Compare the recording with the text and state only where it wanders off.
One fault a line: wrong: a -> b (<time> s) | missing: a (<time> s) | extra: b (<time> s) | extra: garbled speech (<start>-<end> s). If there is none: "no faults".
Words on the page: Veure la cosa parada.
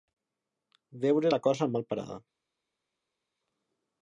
extra: mal (1.7 s)